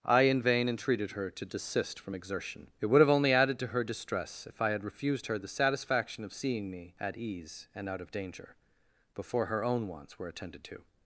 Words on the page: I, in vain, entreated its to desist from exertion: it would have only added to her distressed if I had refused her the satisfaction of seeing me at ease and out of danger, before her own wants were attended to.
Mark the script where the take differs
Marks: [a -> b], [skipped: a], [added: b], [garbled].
I, in vain, entreated [its -> her] to desist from exertion: it would have only added to her [distressed -> distress] if I had refused her the satisfaction of seeing me at ease and out of danger, before her own wants were attended to.